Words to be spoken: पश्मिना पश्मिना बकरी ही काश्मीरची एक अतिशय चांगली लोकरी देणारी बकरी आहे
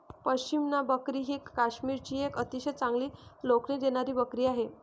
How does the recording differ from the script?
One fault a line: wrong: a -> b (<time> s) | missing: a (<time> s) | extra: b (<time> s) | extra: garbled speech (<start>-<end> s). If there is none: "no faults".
missing: पश्मिना (0.8 s)